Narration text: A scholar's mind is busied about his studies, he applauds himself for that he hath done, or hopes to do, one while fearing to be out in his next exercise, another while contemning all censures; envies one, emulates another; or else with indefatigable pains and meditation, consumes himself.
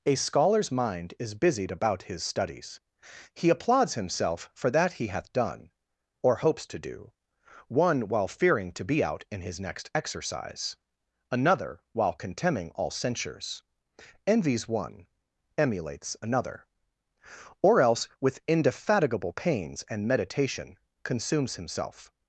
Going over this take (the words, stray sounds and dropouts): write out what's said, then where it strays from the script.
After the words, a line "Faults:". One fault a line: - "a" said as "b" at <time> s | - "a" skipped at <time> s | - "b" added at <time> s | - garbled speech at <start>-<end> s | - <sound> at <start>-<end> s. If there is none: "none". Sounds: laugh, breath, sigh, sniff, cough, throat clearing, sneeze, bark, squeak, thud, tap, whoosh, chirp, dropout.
A scholar's mind is busied about his studies, he applauds himself for that he hath done, or hopes to do, one while fearing to be out in his next exercise, another while contemning all censures; envies one, emulates another; or else with indefatigable pains and meditation, consumes himself.
Faults:
none